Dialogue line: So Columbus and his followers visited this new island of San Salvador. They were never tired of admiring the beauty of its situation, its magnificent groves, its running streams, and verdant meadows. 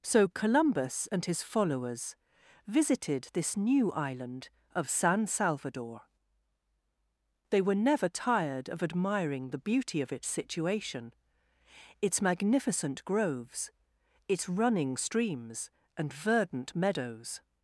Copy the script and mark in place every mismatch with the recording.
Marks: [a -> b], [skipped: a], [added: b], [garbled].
So Columbus and his followers visited this new island of San Salvador. They were never tired of admiring the beauty of its situation, its magnificent groves, its running streams, and verdant meadows.